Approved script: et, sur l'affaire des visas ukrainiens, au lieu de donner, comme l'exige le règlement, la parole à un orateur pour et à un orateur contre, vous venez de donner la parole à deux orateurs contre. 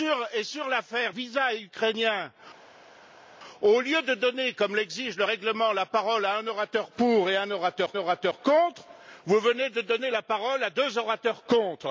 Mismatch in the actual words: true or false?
true